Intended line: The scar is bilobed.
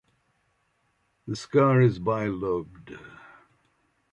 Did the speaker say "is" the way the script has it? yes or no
yes